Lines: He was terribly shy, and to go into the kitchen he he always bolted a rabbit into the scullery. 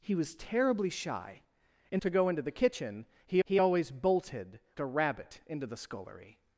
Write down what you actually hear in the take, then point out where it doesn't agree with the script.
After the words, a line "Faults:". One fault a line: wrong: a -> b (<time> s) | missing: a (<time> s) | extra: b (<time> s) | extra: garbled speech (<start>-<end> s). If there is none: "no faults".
He was terribly shy, and to go into the kitchen he he always bolted a rabbit into the scullery.
Faults:
no faults